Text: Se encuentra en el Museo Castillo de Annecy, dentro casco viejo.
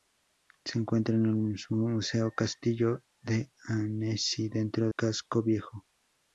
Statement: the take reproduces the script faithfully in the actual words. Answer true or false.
true